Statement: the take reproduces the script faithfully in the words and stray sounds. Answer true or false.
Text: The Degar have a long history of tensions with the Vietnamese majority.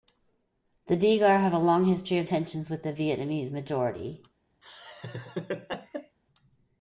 false